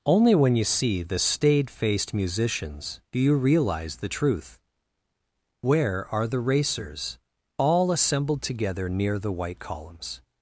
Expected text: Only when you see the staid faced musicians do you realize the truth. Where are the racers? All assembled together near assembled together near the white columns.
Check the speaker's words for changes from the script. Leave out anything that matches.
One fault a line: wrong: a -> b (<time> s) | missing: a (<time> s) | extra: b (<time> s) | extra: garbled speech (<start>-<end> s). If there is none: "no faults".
missing: assembled together near (9.2 s)